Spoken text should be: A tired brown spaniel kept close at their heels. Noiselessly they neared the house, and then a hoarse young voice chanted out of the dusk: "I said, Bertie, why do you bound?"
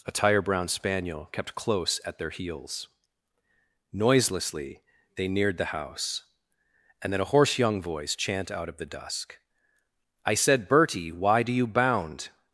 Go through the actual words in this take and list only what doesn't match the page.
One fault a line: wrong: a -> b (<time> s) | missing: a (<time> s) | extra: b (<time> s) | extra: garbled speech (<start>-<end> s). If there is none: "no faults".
wrong: tired -> tire (0.1 s)
wrong: chanted -> chant (8.2 s)